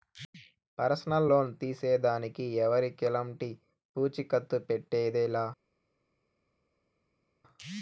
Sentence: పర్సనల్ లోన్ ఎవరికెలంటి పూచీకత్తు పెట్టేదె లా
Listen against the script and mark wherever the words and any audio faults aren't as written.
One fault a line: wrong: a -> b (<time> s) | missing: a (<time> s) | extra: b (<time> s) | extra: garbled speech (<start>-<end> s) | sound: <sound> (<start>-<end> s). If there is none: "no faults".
extra: తీసేదానికి (1.6 s)